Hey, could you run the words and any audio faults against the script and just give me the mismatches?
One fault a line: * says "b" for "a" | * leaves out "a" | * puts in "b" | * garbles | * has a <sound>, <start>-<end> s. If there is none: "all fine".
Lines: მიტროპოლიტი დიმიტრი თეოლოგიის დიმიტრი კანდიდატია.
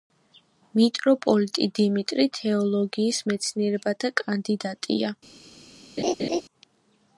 * says "მეცნიერებათა" for "დიმიტრი"
* has a laugh, 6.0-6.4 s